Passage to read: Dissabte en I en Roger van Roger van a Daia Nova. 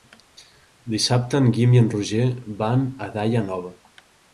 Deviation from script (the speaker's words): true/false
true